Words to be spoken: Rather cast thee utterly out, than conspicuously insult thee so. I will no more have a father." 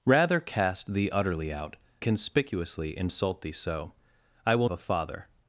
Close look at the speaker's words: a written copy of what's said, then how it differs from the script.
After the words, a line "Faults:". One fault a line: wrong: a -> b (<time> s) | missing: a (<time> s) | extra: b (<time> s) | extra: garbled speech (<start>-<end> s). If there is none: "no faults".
Rather cast thee utterly out, conspicuously insult thee so. I will a father."
Faults:
missing: than (1.8 s)
missing: no more have (4.7 s)